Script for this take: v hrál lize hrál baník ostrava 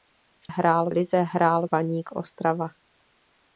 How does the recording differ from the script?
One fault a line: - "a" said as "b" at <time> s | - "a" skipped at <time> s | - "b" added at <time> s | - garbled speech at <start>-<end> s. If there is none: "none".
none